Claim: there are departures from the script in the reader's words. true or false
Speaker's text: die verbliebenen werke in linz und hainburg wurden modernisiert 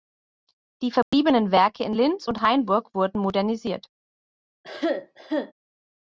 false